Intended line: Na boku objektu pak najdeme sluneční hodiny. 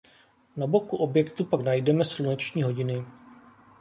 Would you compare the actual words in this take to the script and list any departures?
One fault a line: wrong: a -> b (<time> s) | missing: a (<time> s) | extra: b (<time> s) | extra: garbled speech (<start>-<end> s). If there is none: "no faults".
no faults